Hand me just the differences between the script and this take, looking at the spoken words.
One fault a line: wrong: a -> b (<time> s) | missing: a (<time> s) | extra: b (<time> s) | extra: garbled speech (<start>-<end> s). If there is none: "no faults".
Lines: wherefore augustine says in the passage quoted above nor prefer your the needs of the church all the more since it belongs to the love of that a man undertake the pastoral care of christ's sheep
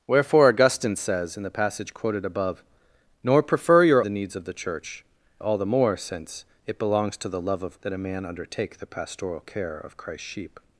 no faults